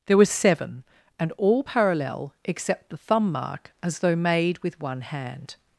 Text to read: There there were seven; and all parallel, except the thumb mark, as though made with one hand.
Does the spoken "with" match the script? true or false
true